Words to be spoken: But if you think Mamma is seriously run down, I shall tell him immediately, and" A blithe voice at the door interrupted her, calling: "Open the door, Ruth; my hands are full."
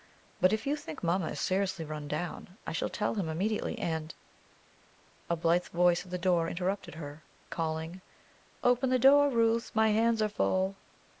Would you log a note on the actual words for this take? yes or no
no